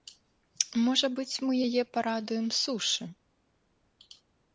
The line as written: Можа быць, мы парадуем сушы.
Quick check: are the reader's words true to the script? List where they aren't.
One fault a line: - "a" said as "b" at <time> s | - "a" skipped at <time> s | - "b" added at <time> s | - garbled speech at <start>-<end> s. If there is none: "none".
- "яе" added at 1.7 s